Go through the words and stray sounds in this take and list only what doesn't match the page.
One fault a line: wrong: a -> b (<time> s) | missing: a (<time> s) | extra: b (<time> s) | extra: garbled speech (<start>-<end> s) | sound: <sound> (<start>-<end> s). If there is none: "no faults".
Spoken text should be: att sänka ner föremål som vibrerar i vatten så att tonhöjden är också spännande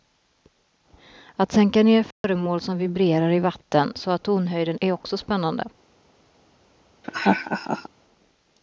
sound: dropout (2.1-2.2 s)
sound: laugh (7.0-7.9 s)